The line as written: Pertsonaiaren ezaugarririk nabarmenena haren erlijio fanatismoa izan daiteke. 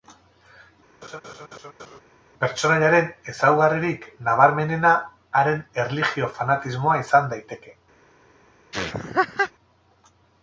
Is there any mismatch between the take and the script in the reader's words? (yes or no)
no